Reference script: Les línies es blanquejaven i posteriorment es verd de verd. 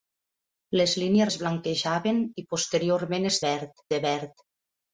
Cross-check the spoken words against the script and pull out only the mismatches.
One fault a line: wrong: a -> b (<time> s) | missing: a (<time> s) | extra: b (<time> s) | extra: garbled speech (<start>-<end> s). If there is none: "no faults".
no faults